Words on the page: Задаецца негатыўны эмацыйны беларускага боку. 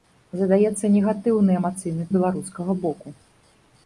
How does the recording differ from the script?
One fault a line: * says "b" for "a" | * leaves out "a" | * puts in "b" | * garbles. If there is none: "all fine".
all fine